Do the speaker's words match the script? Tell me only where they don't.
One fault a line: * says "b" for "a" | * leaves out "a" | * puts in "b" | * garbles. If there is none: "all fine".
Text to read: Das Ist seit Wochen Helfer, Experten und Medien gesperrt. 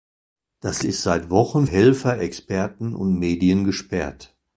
all fine